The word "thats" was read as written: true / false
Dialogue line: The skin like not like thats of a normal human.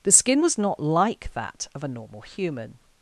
false